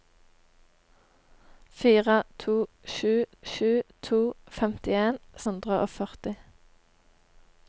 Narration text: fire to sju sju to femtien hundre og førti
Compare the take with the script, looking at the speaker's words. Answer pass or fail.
pass